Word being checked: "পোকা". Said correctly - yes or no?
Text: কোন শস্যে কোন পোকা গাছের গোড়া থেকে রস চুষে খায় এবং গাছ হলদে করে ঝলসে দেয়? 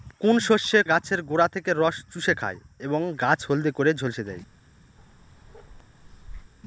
no